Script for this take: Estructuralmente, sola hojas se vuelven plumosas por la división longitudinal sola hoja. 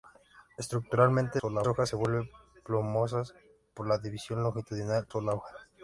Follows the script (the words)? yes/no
yes